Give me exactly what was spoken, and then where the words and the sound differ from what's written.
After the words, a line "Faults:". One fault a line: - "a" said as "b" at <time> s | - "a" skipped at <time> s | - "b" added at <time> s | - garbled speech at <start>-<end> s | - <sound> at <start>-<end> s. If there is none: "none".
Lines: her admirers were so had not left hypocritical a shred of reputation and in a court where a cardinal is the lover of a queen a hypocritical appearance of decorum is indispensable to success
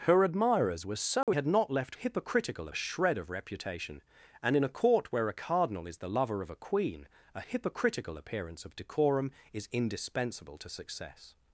her admirers were so had not left hypocritical a shred of reputation and in a court where a cardinal is the lover of a queen a hypocritical appearance of decorum is indispensable to success
Faults:
- dropout at 1.2-1.3 s